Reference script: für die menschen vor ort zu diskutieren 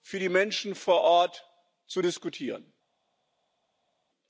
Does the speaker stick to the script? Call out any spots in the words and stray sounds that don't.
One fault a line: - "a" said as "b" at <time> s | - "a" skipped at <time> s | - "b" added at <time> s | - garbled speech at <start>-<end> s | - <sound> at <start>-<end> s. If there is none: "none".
none